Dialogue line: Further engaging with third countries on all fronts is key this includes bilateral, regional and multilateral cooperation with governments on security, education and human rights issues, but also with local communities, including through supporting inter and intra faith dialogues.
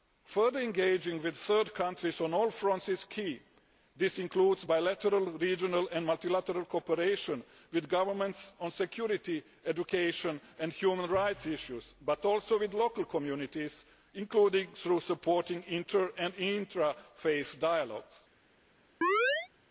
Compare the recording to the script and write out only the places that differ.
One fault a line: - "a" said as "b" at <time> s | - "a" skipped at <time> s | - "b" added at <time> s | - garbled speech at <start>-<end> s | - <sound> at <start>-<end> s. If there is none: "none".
- chirp at 19.0-19.5 s